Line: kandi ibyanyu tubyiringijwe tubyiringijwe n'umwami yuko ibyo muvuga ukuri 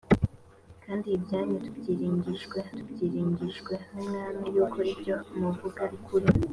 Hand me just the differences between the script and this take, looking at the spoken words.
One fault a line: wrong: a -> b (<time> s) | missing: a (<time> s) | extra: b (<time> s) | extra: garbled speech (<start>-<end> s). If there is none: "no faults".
no faults